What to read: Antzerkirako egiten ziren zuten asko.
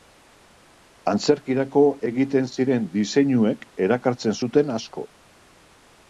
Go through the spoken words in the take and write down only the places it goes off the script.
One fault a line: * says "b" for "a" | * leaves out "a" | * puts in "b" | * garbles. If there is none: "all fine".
* puts in "diseinuek erakartzen"